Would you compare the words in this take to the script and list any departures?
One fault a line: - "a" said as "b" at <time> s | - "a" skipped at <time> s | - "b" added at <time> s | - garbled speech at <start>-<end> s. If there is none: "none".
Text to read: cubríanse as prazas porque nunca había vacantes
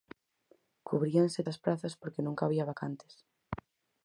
none